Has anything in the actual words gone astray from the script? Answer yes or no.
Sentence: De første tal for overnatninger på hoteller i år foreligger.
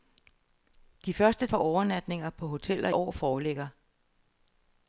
yes